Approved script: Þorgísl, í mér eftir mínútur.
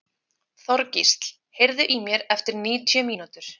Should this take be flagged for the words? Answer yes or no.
yes